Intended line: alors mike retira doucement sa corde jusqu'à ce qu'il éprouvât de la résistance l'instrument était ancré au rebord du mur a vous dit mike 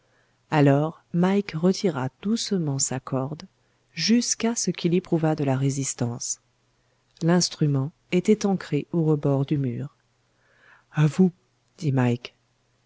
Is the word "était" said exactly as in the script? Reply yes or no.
yes